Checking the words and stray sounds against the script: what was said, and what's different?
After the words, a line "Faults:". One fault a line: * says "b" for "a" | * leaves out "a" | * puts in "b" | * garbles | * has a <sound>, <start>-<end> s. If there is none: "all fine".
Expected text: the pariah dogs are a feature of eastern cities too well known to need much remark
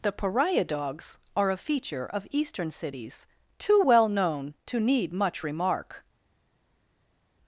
the pariah dogs are a feature of eastern cities too well known to need much remark
Faults:
all fine